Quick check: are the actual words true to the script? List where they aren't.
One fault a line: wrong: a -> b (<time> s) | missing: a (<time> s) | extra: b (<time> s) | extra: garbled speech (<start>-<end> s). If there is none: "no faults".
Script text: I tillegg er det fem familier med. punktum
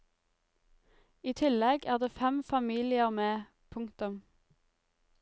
no faults